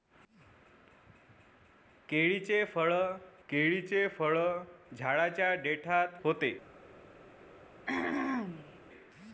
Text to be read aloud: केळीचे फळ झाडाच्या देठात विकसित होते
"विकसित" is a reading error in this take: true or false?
true